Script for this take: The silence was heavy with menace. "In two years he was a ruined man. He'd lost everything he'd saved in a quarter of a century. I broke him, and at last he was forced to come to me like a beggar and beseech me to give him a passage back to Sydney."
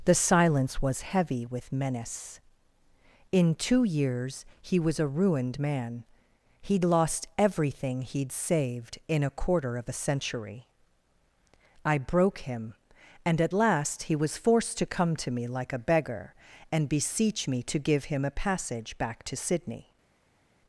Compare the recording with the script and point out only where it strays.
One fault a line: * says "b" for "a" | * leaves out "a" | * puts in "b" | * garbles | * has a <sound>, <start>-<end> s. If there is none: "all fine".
all fine